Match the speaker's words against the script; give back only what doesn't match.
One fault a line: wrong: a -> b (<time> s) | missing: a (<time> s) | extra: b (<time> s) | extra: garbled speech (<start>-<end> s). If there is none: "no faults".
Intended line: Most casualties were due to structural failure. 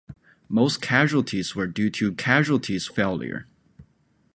wrong: structural -> casualties (2.2 s)